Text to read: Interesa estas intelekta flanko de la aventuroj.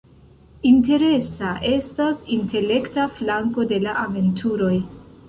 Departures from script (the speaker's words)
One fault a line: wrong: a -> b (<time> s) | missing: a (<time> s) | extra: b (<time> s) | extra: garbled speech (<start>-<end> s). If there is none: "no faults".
no faults